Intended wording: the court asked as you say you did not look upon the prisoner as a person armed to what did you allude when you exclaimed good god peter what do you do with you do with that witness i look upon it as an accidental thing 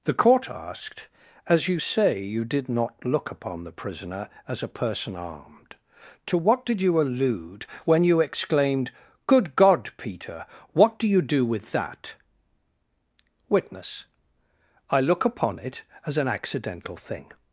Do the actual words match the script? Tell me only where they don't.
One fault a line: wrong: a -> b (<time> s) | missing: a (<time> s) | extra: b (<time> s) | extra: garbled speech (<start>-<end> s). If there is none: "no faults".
missing: you do with (11.7 s)